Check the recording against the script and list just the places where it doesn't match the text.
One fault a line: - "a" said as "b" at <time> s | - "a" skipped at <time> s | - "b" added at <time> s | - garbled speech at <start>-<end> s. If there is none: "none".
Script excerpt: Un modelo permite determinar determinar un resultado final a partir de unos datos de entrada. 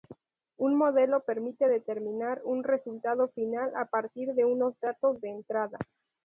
- "determinar" skipped at 2.4 s